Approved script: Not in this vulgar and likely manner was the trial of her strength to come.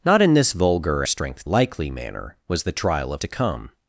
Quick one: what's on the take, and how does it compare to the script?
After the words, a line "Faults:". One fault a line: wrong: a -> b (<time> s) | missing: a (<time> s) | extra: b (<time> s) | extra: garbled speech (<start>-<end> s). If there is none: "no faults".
Not in this vulgar strength likely manner was the trial of to come.
Faults:
wrong: and -> strength (1.0 s)
missing: her strength (3.2 s)